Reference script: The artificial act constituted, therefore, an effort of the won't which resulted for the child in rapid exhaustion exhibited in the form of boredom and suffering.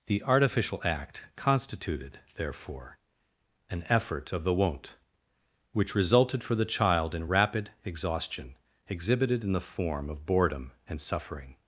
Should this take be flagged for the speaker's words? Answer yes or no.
no